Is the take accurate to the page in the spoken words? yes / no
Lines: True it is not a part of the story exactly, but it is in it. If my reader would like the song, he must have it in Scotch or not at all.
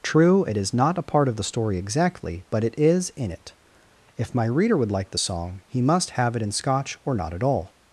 yes